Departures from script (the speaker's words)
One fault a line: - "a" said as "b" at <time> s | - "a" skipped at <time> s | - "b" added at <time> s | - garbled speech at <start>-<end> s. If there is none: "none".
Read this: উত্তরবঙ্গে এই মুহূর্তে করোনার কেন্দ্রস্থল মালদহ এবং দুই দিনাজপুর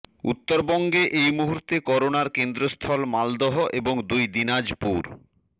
none